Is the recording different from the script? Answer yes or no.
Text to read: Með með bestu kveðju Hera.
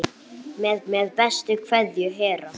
no